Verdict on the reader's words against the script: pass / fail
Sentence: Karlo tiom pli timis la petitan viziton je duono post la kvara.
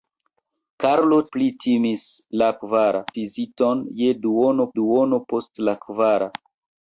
fail